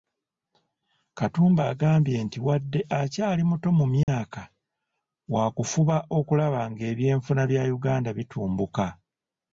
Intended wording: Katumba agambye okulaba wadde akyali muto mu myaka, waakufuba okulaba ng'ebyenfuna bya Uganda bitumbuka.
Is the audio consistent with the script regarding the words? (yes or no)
no